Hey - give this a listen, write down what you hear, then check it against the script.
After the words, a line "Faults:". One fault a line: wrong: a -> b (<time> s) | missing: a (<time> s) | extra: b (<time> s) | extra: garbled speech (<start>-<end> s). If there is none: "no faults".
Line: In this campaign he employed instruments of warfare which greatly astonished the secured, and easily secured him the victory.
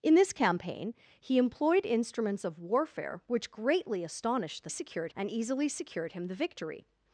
In this campaign he employed instruments of warfare which greatly astonished the secured, and easily secured him the victory.
Faults:
no faults